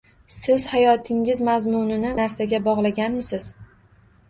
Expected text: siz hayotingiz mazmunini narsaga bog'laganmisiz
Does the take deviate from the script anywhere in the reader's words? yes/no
no